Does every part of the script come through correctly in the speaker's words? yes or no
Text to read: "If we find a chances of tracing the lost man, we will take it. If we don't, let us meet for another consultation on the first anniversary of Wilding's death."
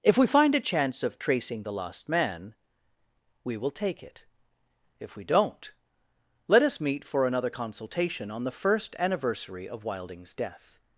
no